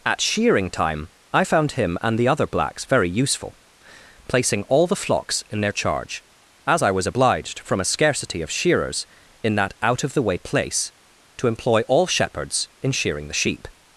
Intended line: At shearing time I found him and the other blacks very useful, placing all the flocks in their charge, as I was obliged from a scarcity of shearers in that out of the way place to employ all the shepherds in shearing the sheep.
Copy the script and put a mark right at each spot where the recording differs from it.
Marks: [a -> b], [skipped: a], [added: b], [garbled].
At shearing time I found him and the other blacks very useful, placing all the flocks in their charge, as I was obliged from a scarcity of shearers in that out of the way place to employ all [skipped: the] shepherds in shearing the sheep.